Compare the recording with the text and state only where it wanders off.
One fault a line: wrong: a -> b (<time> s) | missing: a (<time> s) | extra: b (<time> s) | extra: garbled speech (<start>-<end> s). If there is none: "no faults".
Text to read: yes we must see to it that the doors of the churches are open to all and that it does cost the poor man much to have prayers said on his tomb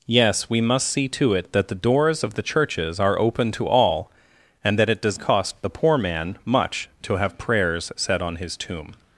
no faults